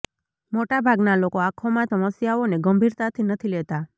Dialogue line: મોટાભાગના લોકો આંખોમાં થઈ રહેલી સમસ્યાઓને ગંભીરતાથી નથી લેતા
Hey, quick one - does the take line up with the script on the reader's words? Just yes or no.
no